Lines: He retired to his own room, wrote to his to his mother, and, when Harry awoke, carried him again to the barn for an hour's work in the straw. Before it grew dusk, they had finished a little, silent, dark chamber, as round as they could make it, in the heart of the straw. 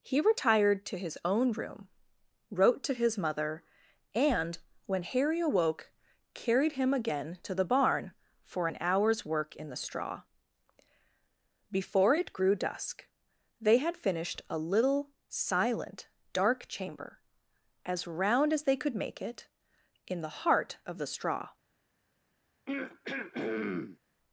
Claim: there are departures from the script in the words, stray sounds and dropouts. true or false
true